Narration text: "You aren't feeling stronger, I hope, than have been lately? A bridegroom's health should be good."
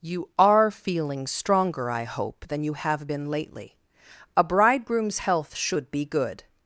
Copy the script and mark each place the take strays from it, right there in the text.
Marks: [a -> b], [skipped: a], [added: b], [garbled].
"You [aren't -> are] feeling stronger, I hope, than [added: you] have been lately? A bridegroom's health should be good."